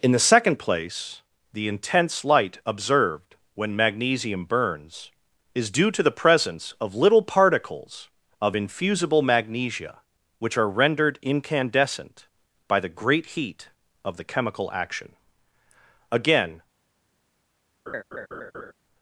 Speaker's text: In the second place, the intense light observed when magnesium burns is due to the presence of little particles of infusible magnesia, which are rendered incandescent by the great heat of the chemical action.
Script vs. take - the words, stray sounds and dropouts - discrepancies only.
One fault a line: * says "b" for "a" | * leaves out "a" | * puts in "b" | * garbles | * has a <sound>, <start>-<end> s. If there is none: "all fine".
* puts in "Again"
* has a laugh, 17.9-18.7 s